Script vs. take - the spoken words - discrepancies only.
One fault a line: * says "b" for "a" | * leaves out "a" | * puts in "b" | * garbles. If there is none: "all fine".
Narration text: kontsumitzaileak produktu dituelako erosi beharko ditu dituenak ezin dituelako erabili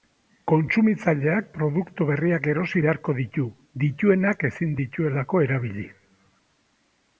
* says "berriak" for "dituelako"